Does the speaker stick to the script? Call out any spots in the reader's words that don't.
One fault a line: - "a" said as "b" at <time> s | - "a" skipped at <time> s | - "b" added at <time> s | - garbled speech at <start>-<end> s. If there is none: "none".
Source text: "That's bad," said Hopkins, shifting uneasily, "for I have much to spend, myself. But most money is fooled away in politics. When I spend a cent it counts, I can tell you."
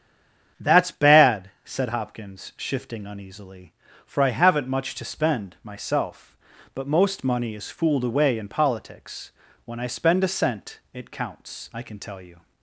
- "have" said as "haven't" at 4.3 s